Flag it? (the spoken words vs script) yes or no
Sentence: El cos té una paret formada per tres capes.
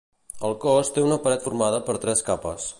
no